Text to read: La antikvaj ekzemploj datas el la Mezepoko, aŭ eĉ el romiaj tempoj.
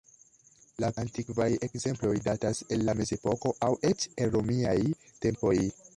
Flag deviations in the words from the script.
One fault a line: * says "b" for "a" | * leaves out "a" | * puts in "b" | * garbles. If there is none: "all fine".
all fine